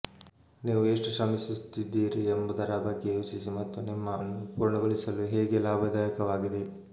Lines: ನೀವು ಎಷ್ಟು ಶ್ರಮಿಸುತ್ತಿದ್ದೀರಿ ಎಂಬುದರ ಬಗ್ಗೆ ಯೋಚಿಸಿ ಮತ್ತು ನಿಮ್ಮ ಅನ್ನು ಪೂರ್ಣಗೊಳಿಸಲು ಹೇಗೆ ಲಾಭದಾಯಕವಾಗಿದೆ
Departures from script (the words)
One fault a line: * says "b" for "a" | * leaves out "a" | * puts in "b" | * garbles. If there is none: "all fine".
all fine